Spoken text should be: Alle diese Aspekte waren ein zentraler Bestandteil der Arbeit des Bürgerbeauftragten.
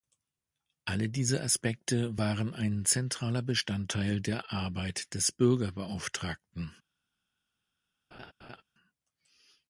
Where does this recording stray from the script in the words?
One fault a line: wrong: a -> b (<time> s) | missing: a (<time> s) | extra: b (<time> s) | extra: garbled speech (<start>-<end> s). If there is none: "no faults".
no faults